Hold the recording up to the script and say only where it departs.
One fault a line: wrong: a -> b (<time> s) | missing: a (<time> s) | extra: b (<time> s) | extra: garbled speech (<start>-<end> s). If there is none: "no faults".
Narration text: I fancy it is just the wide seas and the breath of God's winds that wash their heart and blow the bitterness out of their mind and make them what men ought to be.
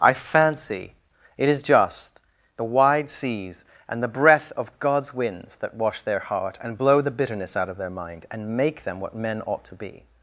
no faults